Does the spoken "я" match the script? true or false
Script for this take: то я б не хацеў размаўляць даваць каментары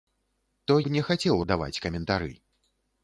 false